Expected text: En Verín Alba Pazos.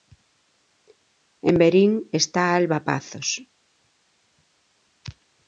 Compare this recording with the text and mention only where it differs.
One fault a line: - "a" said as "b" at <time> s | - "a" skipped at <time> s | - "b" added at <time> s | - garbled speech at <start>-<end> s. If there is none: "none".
- "está" added at 2.1 s